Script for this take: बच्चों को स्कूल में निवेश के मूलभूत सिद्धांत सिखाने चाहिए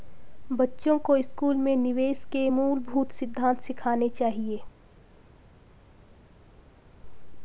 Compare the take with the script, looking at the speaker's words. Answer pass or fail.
pass